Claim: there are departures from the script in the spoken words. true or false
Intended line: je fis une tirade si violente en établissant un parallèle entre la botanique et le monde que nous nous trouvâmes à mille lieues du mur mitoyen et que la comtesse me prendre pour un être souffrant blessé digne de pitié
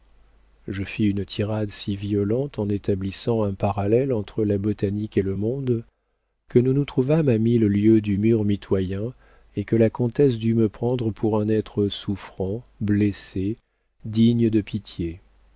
true